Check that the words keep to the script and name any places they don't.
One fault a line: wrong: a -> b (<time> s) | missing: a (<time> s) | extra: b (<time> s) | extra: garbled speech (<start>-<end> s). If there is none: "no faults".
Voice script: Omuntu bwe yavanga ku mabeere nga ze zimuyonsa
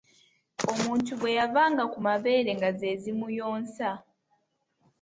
no faults